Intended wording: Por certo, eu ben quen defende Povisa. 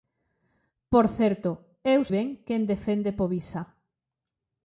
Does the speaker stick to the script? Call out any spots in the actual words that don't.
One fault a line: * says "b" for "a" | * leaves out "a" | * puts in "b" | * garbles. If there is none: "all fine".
all fine